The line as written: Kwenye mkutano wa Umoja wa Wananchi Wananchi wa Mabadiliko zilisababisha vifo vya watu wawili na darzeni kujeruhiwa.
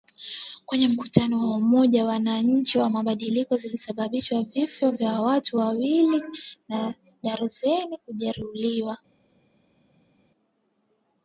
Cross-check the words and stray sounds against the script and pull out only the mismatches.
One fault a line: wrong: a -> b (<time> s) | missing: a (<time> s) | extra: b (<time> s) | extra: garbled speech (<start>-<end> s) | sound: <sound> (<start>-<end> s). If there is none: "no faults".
missing: Wananchi (2.8 s)